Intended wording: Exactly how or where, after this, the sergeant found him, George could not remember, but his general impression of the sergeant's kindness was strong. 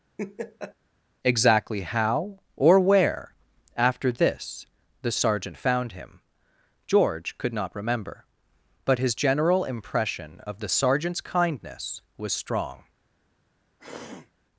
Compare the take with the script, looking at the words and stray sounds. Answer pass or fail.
fail